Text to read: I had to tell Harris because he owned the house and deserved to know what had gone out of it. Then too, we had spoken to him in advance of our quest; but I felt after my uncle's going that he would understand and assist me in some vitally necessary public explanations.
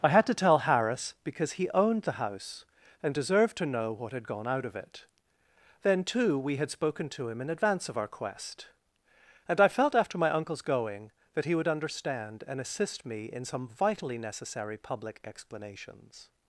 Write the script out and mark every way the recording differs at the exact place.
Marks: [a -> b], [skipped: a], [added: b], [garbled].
I had to tell Harris because he owned the house and deserved to know what had gone out of it. Then too, we had spoken to him in advance of our quest; [but -> and] I felt after my uncle's going that he would understand and assist me in some vitally necessary public explanations.